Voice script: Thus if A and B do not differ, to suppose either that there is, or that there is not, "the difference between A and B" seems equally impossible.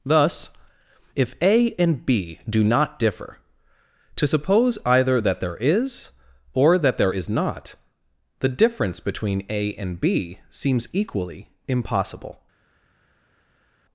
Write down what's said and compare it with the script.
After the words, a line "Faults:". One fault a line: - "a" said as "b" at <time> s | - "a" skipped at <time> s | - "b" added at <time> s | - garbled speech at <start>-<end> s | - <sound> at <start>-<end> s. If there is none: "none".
Thus if A and B do not differ, to suppose either that there is, or that there is not, "the difference between A and B" seems equally impossible.
Faults:
none